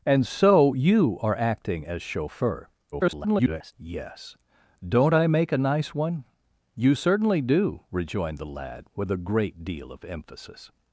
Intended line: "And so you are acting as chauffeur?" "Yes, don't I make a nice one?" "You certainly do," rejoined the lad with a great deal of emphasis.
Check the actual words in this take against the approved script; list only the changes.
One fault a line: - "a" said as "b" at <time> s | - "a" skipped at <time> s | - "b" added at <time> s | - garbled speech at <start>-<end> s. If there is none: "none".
- garbled speech at 2.9-3.7 s